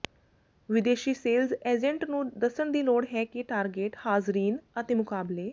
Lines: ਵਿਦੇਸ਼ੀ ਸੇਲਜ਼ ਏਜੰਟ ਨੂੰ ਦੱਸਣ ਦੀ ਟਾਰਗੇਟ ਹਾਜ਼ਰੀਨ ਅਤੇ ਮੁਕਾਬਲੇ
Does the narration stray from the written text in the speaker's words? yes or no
yes